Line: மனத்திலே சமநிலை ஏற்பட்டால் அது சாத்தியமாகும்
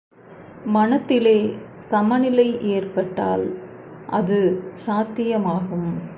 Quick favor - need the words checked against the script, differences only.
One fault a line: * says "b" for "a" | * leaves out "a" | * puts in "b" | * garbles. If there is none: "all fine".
all fine